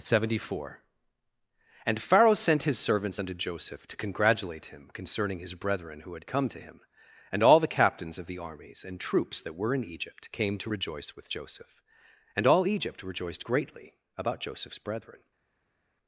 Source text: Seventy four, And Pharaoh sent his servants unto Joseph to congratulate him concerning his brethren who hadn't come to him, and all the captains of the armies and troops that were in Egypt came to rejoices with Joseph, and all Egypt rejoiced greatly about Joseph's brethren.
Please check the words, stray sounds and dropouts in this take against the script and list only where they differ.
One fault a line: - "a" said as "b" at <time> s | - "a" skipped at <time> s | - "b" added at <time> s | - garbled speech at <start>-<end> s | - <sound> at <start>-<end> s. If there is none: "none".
- "hadn't" said as "had" at 6.1 s
- "rejoices" said as "rejoice" at 10.7 s